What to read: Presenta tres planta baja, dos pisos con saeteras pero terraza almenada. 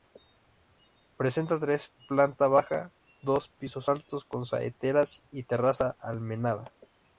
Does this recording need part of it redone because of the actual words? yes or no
yes